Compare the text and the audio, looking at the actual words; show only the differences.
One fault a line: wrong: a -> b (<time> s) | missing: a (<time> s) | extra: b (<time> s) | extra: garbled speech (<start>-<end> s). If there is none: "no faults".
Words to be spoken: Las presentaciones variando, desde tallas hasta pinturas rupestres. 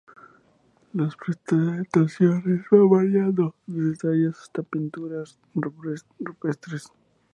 extra: van (2.7 s)